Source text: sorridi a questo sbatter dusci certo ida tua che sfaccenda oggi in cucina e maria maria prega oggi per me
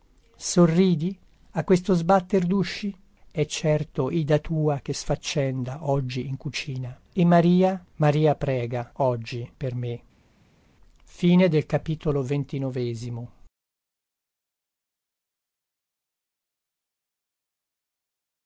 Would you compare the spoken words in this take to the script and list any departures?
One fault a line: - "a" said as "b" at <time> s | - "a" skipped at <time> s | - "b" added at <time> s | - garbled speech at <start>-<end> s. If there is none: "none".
- "è" added at 3.3 s